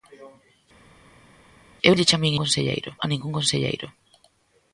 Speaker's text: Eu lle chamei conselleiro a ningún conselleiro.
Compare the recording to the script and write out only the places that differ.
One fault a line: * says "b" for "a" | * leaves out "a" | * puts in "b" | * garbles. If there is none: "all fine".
all fine